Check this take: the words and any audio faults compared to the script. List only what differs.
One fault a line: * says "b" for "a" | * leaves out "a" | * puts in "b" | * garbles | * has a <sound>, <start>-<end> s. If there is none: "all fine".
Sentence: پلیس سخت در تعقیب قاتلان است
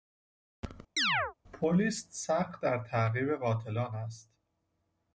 * has a chirp, 1.0-1.3 s